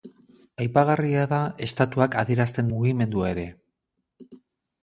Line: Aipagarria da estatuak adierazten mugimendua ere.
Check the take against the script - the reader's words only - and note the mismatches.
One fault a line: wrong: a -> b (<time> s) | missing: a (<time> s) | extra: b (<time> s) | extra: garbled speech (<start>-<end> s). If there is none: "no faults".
no faults